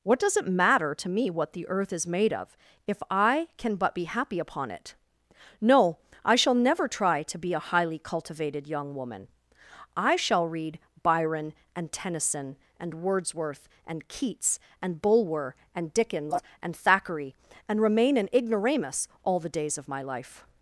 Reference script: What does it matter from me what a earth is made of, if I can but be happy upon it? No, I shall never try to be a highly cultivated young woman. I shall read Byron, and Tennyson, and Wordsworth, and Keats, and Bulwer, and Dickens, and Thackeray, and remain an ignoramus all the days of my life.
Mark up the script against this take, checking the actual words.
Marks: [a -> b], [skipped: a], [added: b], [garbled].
What does it matter [from -> to] me what [a -> the] earth is made of, if I can but be happy upon it? No, I shall never try to be a highly cultivated young woman. I shall read Byron, and Tennyson, and Wordsworth, and Keats, and Bulwer, and Dickens, and Thackeray, and remain an ignoramus all the days of my life.